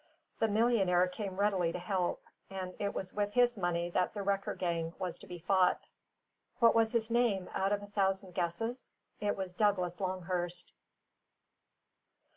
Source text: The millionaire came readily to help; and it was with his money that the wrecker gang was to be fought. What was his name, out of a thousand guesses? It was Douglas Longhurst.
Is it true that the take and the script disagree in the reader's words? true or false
false